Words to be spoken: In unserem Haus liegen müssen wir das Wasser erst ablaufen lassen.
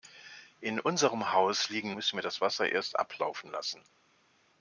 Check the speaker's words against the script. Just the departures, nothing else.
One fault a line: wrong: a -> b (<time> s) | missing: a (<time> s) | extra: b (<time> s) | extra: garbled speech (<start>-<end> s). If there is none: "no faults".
no faults